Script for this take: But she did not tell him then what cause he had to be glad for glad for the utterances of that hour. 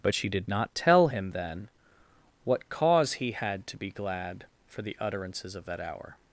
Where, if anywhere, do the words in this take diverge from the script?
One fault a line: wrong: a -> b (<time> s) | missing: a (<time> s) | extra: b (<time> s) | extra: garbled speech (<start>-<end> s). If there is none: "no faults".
missing: glad for (4.8 s)